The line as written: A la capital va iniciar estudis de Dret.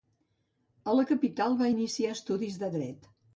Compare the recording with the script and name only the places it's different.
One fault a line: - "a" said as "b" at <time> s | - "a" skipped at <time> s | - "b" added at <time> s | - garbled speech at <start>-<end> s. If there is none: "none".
none